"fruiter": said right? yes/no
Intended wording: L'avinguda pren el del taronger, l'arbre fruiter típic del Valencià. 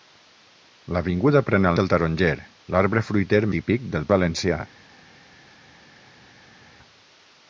yes